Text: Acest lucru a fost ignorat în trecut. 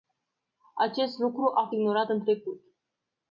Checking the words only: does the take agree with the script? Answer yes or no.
no